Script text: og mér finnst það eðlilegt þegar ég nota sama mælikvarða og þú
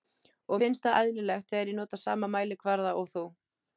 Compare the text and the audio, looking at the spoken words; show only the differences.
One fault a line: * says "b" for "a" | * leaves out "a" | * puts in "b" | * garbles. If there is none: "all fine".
* leaves out "mér"